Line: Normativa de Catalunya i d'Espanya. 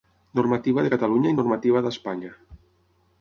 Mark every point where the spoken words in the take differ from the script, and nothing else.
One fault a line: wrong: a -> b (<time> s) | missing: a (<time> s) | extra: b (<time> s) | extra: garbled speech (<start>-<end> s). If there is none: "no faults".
extra: normativa (1.4 s)